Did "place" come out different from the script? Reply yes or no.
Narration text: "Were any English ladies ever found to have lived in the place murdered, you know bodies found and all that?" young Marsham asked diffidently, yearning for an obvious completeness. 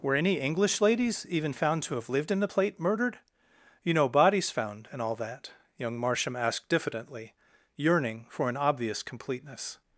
yes